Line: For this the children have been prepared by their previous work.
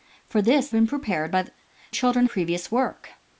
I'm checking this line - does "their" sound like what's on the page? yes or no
no